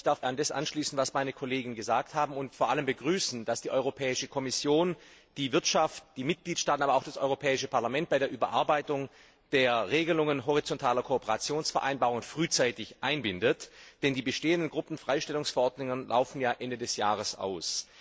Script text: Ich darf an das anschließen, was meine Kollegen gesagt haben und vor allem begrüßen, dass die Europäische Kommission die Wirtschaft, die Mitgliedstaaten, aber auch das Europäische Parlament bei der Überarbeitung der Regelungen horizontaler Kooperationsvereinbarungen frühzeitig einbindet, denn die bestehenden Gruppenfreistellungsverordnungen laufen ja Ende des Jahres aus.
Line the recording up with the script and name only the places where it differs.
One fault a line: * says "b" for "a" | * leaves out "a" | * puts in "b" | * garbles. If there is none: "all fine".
all fine